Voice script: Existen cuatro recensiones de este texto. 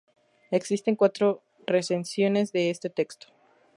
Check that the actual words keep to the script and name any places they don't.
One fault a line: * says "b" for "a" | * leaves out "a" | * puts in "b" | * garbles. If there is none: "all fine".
all fine